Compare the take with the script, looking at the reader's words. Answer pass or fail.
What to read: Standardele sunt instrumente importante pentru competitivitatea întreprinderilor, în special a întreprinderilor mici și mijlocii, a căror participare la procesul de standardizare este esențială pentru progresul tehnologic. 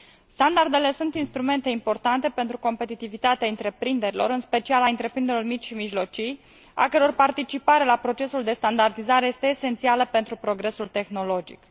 pass